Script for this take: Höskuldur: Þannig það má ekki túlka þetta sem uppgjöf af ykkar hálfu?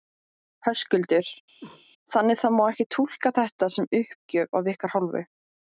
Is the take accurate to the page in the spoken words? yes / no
yes